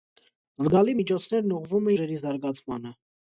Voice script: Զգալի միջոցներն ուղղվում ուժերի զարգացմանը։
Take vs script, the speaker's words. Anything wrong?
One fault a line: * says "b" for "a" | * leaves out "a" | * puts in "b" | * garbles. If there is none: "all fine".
all fine